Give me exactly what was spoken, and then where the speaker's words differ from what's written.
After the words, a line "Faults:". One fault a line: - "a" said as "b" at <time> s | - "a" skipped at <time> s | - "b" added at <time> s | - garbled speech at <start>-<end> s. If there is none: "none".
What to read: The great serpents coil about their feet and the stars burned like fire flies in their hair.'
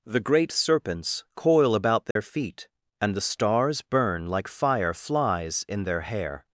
The great serpents coil about their feet and the stars burn like fire flies in their hair.'
Faults:
- "burned" said as "burn" at 3.8 s